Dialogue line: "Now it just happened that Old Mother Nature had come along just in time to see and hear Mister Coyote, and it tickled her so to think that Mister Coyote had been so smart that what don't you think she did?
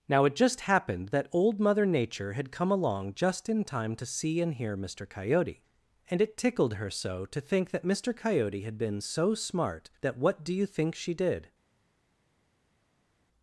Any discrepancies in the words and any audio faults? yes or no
yes